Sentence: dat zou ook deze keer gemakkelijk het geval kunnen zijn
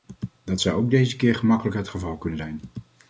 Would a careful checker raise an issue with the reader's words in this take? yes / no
no